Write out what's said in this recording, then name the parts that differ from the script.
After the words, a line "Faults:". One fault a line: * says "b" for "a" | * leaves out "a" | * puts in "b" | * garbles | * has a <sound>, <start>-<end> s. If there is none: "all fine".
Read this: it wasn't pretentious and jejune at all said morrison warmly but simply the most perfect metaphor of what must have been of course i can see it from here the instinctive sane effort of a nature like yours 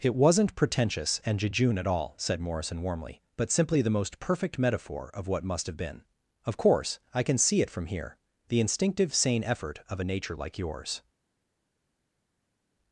it wasn't pretentious and jejune at all said morrison warmly but simply the most perfect metaphor of what must have been of course i can see it from here the instinctive sane effort of a nature like yours
Faults:
all fine